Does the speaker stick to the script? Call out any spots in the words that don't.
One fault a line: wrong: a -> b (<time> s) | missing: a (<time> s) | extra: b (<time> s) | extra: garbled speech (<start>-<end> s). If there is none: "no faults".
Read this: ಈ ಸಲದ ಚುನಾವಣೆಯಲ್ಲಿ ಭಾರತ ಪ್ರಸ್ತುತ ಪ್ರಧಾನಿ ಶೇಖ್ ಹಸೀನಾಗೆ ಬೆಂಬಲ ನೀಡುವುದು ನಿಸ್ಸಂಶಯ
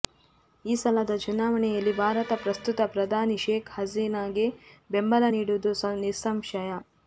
no faults